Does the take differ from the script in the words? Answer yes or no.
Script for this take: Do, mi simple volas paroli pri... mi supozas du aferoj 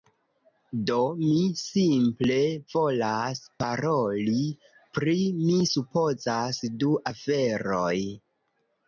no